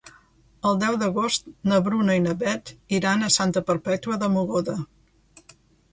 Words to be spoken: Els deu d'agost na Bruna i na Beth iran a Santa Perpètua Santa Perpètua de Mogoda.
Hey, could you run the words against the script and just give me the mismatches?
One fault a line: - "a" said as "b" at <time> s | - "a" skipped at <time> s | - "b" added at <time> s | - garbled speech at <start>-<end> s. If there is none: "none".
- "Els" said as "El" at 0.7 s
- "Santa Perpètua" skipped at 4.2 s